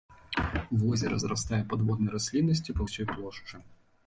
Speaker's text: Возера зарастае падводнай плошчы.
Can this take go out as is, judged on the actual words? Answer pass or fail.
fail